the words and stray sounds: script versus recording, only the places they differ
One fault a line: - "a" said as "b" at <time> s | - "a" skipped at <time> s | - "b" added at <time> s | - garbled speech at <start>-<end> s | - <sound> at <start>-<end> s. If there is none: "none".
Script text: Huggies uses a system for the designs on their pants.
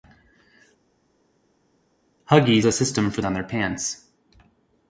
- "uses" skipped at 2.6 s
- "the designs" skipped at 3.2 s